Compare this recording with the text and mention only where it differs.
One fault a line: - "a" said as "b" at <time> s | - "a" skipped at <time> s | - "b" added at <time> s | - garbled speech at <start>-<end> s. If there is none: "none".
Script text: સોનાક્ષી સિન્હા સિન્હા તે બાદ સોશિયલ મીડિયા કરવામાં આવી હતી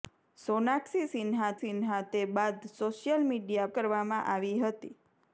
none